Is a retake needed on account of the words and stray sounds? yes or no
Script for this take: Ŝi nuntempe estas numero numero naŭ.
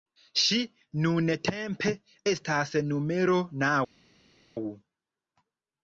yes